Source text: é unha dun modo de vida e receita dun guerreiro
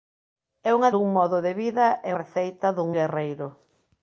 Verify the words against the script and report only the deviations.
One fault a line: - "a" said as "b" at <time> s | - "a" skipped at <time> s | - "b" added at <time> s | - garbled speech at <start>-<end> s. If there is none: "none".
none